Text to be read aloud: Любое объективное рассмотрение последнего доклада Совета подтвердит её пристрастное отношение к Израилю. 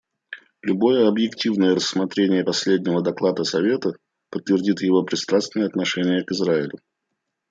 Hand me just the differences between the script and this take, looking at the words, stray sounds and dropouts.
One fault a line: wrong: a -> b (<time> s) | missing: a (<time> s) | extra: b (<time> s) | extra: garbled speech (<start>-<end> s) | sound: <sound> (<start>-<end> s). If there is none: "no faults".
wrong: её -> его (4.8 s)